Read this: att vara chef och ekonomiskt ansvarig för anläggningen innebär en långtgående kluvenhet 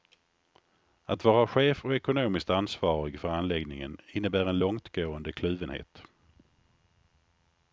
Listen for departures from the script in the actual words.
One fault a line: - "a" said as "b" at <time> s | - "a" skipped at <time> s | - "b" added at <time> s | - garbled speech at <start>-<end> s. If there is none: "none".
none